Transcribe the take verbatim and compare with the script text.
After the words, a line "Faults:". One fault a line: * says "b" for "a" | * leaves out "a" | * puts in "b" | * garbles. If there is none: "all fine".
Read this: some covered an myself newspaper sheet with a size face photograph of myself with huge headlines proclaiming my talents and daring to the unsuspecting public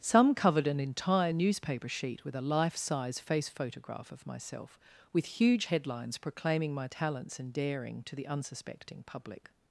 some covered an entire newspaper sheet with a life size face photograph of myself with huge headlines proclaiming my talents and daring to the unsuspecting public
Faults:
* says "entire" for "myself"
* puts in "life"